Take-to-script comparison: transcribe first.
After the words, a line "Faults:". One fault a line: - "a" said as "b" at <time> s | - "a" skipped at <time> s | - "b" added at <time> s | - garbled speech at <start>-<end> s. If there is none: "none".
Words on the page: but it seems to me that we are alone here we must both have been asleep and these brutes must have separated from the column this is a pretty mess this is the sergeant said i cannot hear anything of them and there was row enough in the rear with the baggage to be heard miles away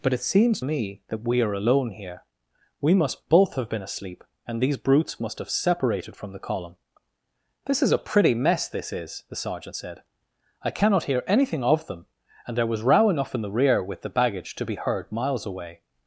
but it seems me that we are alone here we must both have been asleep and these brutes must have separated from the column this is a pretty mess this is the sergeant said i cannot hear anything of them and there was row enough in the rear with the baggage to be heard miles away
Faults:
- "to" skipped at 0.6 s